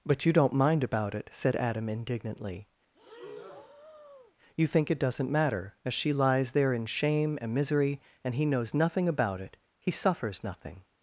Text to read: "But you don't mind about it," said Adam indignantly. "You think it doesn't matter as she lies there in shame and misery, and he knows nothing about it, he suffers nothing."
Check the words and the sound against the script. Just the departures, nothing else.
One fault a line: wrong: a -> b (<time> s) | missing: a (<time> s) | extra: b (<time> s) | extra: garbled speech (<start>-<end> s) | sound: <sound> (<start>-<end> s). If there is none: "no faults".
sound: breath (2.9-4.3 s)